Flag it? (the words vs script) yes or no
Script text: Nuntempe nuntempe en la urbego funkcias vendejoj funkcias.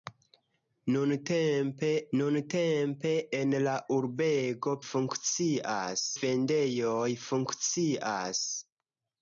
no